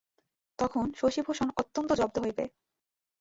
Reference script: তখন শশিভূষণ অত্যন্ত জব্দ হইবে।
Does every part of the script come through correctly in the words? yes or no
yes